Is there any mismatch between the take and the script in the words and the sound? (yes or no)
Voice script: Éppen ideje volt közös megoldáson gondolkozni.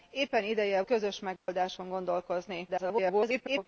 yes